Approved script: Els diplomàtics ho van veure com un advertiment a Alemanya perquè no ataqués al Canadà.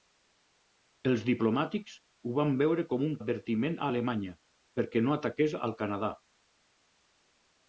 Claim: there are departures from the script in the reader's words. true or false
false